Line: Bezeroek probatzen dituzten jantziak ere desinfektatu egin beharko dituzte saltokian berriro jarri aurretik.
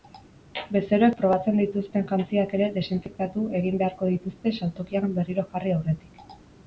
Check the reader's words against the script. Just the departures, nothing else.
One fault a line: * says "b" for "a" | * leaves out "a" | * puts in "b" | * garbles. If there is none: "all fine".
all fine